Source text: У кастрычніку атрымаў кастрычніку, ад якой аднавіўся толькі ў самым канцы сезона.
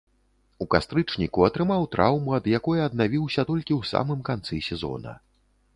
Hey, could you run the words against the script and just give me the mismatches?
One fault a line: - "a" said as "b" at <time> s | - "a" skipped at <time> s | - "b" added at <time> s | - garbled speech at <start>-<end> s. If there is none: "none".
- "кастрычніку" said as "траўму" at 2.0 s